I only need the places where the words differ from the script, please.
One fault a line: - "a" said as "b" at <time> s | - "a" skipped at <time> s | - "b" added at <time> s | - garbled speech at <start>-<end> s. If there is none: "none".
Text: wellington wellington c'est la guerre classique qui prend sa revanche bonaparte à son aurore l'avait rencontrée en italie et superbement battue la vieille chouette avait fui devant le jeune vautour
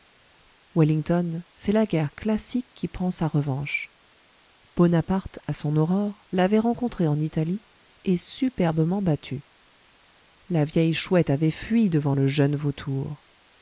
- "wellington" skipped at 1.4 s